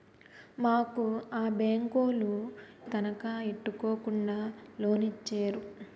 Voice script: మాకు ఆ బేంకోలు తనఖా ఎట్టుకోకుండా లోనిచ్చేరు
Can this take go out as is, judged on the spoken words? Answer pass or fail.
pass